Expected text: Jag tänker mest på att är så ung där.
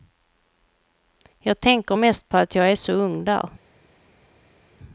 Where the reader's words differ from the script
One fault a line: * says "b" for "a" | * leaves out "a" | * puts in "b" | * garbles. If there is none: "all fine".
* puts in "jag"